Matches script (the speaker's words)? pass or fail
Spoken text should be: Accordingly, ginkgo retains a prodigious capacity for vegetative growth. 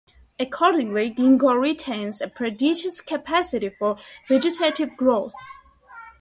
pass